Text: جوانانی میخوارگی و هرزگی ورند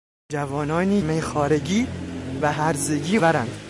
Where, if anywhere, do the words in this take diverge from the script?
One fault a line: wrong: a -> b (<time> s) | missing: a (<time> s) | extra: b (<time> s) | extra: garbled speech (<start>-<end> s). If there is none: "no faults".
no faults